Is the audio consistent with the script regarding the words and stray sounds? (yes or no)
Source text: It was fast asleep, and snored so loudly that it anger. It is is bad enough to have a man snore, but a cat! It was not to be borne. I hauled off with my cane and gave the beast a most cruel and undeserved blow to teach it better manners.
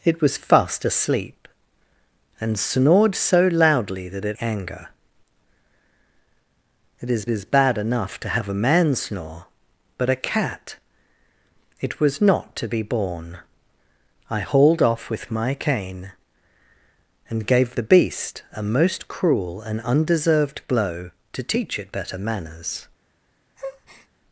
no